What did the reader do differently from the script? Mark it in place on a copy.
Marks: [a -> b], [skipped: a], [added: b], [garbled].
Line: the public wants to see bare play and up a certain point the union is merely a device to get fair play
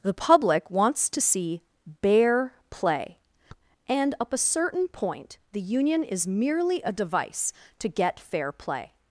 the public wants to see bare play and up a certain point the union is merely a device to get fair play